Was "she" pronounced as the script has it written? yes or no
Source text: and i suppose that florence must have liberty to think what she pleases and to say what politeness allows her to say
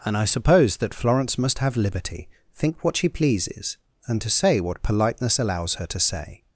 yes